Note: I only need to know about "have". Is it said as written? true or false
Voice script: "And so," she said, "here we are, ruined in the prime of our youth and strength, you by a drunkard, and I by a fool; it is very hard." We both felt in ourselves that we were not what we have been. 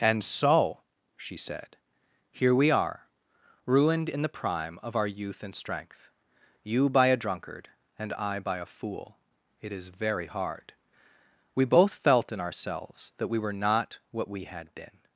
false